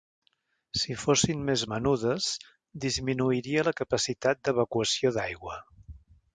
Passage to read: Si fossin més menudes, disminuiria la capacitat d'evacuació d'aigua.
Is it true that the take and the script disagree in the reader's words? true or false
false